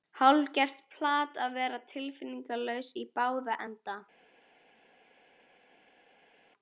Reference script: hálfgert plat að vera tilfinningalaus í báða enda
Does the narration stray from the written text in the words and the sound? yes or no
no